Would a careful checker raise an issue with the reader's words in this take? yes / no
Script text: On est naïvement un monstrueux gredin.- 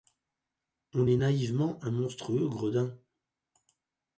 no